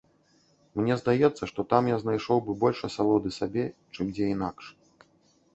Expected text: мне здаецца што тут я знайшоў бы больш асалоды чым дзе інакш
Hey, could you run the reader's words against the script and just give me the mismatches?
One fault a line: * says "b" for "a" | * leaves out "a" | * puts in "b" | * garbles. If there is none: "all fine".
* says "там" for "тут"
* puts in "сабе"